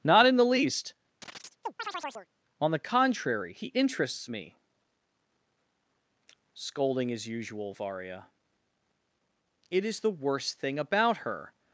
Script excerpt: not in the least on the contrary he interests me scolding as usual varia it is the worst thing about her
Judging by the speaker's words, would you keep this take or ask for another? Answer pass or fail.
pass